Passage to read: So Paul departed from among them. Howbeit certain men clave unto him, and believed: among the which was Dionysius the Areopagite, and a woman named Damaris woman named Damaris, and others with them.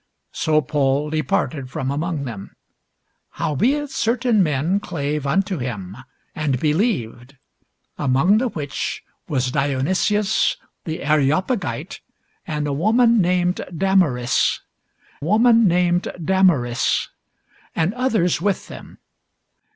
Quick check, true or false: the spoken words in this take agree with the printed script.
true